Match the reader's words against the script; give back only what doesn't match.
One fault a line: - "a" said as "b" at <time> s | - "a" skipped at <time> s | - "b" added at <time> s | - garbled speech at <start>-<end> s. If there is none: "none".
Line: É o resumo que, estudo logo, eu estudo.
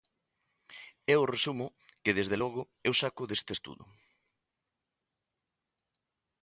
- "estudo" said as "desde" at 2.2 s
- "saco deste" added at 3.0 s